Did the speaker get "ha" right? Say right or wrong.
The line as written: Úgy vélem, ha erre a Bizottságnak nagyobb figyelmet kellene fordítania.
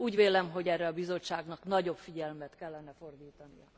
wrong